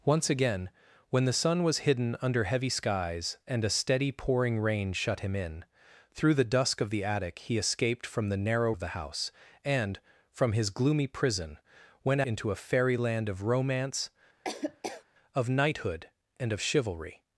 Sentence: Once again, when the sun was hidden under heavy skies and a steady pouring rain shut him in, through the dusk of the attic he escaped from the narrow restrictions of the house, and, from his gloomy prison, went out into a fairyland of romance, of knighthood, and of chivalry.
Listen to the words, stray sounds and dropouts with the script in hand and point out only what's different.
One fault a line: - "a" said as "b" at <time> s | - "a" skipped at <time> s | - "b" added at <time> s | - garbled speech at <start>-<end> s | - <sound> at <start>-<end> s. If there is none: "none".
- "restrictions" skipped at 8.7 s
- "out" skipped at 12.2 s
- laugh at 14.4-15.0 s